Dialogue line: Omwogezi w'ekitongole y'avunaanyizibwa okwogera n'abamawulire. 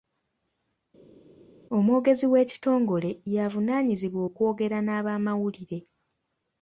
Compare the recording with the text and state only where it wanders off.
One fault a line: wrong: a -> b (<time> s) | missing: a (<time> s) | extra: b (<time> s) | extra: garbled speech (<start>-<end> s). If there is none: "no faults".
no faults